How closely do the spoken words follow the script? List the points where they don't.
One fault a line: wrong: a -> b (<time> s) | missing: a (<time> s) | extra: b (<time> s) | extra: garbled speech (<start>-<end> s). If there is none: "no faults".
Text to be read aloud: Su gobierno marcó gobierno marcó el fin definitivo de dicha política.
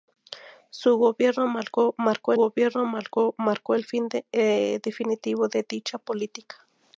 no faults